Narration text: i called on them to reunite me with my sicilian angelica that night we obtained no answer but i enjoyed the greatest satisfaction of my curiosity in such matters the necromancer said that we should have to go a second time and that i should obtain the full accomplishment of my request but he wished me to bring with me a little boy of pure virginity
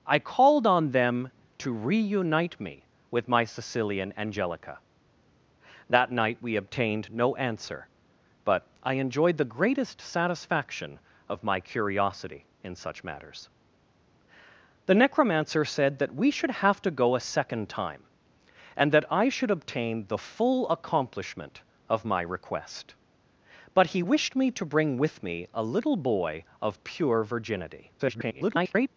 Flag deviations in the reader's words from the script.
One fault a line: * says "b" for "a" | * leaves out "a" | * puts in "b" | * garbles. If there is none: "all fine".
* garbles